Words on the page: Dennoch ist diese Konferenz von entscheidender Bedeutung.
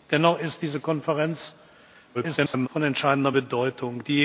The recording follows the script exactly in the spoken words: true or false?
false